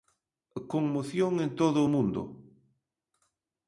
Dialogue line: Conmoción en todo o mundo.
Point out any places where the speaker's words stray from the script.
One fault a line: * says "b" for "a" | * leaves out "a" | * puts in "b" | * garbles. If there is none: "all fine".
all fine